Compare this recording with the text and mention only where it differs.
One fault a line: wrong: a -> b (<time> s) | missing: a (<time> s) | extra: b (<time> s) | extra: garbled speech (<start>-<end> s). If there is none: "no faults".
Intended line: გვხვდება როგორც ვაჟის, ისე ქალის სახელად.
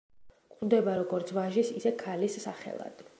no faults